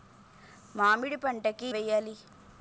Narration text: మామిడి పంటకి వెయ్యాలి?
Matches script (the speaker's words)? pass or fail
pass